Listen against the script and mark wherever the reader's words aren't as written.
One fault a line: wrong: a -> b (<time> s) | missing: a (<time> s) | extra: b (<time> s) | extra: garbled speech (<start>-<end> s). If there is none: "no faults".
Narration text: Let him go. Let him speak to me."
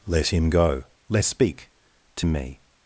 missing: him (1.2 s)